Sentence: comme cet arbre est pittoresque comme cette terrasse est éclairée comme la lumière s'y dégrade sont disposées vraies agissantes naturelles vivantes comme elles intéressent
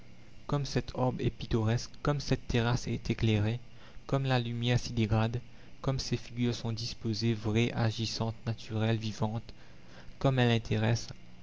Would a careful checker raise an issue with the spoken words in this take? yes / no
yes